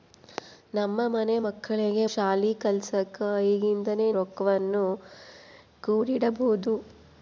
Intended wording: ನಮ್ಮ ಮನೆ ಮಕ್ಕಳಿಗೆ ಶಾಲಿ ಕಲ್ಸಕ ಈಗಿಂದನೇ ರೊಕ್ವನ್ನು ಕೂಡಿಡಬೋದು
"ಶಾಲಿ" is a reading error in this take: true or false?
false